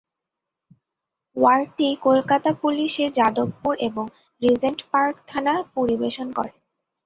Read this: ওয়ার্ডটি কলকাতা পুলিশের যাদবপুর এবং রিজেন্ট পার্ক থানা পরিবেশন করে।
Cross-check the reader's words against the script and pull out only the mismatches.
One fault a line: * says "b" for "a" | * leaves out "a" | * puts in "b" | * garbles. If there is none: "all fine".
all fine